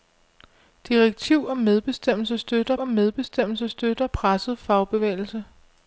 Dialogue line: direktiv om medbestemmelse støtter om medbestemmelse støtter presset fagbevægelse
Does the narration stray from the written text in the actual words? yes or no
no